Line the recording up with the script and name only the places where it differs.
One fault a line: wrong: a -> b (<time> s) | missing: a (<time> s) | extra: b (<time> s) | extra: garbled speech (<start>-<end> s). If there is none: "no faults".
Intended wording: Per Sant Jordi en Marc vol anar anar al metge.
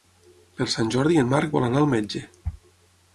missing: anar (1.8 s)